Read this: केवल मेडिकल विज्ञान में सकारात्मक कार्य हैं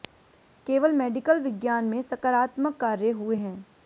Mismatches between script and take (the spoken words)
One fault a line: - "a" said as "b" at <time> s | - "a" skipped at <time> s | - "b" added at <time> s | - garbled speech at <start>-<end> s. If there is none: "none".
- "हुए" added at 3.1 s